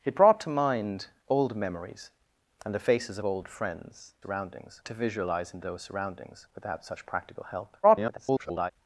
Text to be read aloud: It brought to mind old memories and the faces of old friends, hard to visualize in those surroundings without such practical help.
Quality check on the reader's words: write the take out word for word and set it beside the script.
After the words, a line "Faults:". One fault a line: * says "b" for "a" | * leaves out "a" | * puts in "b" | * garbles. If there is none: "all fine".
It brought to mind old memories and the faces old friends, surroundings to visualize in those surroundings without such practical help. [garbled]
Faults:
* leaves out "of"
* says "surroundings" for "hard"
* garbles